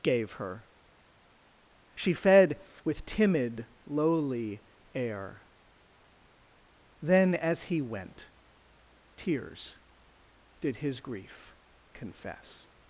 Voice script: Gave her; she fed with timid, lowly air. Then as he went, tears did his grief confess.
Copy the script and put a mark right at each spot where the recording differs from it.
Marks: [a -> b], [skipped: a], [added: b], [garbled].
Gave her; she fed with timid, lowly air. Then as he went, tears did his grief confess.